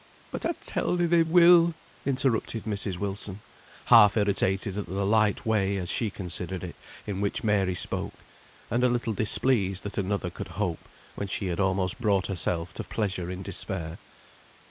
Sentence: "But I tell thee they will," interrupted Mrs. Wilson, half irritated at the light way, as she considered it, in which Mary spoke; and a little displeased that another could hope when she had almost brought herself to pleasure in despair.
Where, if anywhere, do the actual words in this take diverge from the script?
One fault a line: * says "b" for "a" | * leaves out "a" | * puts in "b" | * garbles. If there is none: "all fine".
all fine